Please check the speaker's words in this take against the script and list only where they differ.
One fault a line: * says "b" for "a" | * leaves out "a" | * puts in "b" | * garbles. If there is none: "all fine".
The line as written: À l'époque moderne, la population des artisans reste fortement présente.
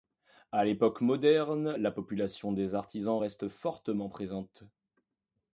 all fine